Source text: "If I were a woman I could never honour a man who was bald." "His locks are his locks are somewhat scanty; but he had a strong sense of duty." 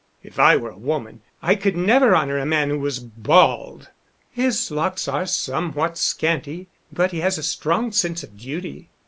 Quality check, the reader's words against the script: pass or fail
fail